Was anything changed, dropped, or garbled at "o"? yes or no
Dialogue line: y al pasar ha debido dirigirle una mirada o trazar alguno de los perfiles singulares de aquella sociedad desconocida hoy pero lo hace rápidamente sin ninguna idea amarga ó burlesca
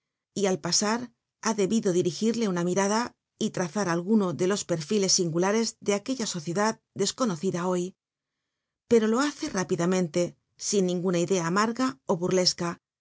yes